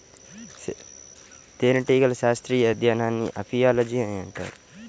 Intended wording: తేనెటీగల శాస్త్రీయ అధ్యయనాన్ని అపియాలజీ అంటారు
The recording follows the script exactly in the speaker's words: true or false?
false